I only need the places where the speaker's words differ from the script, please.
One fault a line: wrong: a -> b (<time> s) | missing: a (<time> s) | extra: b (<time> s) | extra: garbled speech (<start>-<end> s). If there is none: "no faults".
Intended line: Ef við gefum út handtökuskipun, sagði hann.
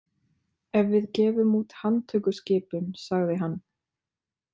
no faults